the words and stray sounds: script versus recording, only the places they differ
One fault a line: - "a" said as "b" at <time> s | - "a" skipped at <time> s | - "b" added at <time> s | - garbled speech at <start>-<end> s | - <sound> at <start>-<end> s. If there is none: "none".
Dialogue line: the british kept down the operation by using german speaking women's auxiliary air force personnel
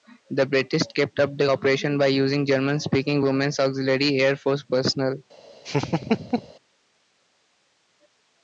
- "down" said as "up" at 1.2 s
- laugh at 5.6-6.5 s